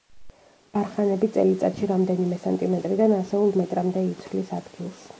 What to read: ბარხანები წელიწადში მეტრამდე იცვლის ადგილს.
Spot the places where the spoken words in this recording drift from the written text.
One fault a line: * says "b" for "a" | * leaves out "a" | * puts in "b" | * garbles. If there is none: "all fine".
* puts in "რამდენიმე სანტიმეტრიდან ასეულ"